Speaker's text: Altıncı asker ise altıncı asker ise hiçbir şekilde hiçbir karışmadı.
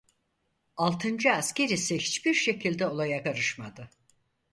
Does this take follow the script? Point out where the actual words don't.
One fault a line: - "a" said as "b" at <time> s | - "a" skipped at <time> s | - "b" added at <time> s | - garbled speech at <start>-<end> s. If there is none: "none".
- "altıncı asker ise" skipped at 2.0 s
- "hiçbir" said as "olaya" at 2.8 s